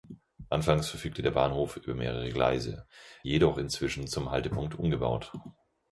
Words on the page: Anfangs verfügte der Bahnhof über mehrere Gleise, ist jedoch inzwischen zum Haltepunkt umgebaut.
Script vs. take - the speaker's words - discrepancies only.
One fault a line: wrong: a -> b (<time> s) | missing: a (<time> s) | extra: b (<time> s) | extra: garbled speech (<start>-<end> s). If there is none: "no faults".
missing: ist (2.9 s)